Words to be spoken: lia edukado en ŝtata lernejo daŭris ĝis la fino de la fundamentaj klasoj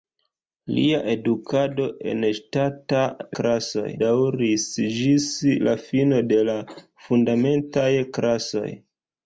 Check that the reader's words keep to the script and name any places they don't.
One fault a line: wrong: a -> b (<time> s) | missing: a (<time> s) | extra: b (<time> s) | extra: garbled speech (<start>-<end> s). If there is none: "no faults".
wrong: lernejo -> klasoj (3.4 s)